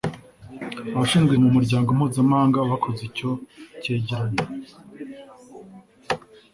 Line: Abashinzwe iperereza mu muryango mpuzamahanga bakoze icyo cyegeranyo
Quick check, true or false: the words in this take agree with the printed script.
false